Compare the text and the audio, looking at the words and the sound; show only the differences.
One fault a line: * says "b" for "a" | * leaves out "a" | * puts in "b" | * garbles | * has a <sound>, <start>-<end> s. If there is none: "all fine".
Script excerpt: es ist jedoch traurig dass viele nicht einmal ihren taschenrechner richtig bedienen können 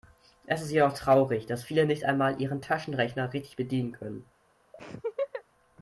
* has a laugh, 4.7-5.4 s